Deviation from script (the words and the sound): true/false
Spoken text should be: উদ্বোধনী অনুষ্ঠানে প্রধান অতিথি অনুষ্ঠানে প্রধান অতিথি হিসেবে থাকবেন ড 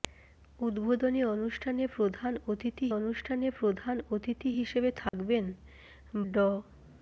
true